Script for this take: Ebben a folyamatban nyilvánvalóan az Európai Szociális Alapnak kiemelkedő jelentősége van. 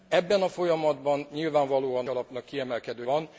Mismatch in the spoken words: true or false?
true